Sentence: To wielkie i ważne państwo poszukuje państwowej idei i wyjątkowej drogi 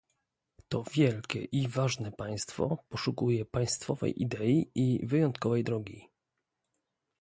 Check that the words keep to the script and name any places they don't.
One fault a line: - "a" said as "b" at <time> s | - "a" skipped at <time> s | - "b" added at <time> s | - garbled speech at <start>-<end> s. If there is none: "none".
none